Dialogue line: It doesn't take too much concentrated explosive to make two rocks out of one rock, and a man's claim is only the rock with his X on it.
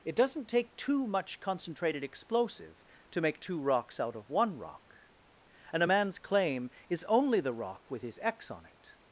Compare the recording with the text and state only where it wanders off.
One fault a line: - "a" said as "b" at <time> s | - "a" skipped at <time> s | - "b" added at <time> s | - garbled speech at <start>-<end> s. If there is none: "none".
none